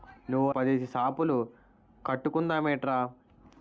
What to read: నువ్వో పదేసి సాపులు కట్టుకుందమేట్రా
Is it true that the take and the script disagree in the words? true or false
false